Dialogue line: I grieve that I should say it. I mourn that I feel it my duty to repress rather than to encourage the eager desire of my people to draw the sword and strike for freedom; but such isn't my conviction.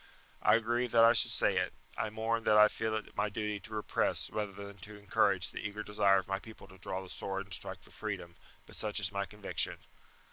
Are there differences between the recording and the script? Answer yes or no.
yes